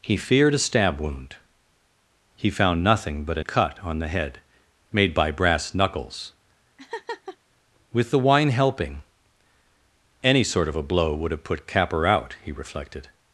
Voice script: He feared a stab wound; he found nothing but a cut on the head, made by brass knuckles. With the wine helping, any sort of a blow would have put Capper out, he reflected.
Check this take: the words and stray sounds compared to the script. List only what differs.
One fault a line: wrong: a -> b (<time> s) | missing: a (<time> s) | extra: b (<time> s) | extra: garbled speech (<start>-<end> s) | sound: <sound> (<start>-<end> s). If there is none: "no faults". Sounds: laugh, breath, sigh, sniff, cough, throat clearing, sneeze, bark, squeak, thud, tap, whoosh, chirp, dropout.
sound: laugh (6.8-7.4 s)